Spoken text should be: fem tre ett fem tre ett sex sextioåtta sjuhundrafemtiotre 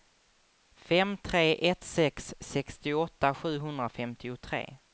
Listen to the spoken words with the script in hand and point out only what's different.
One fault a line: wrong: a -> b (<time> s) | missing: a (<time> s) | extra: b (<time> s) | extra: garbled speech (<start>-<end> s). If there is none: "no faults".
missing: fem tre ett (1.9 s)